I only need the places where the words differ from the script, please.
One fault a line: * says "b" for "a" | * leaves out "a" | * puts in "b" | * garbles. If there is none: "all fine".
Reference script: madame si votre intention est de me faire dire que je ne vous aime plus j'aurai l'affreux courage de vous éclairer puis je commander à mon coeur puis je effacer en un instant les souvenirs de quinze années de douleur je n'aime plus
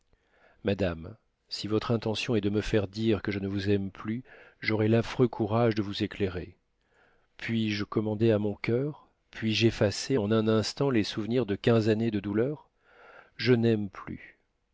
all fine